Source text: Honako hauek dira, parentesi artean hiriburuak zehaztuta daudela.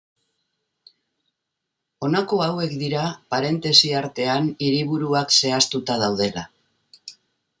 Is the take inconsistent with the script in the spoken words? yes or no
no